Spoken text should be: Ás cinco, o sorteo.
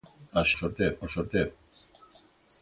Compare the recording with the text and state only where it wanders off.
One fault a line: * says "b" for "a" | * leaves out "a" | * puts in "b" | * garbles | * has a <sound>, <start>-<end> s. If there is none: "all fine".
* says "sorteo" for "cinco"